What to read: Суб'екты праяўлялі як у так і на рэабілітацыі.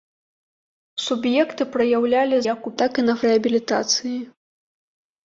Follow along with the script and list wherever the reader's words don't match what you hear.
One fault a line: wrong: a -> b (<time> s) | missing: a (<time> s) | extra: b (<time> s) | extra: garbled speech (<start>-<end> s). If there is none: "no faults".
no faults